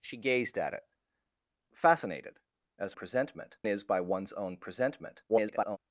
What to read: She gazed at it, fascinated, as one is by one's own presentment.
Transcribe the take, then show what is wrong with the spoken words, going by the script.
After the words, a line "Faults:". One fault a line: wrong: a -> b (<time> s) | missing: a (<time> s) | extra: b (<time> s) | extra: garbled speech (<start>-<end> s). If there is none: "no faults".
She gazed at it, fascinated, as presentment is by one's own presentment. [garbled]
Faults:
wrong: one -> presentment (2.9 s)
extra: garbled speech (5.3-5.8 s)